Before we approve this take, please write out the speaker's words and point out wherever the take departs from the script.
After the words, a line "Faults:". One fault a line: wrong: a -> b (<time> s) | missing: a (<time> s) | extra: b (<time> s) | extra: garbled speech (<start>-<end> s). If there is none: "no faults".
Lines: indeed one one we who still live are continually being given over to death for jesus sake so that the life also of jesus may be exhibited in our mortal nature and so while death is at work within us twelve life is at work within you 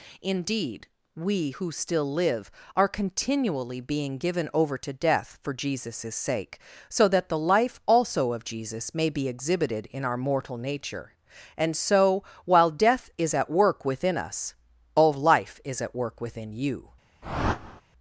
indeed we who still live are continually being given over to death for jesus sake so that the life also of jesus may be exhibited in our mortal nature and so while death is at work within us all life is at work within you
Faults:
missing: one one (0.9 s)
wrong: twelve -> all (14.9 s)